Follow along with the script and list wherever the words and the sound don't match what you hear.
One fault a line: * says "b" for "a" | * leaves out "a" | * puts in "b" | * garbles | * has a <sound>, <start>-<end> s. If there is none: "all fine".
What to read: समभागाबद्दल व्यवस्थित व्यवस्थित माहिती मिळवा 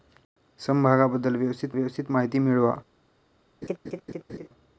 * has a laugh, 3.6-4.5 s